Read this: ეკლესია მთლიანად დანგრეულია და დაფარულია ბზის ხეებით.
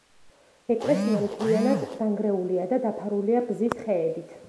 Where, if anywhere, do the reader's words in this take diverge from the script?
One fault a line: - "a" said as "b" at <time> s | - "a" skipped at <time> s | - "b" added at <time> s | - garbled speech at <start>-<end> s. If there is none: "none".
none